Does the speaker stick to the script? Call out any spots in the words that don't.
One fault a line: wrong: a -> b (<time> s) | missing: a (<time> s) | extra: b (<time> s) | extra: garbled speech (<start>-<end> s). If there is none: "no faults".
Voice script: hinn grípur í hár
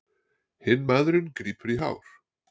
extra: maðurinn (0.9 s)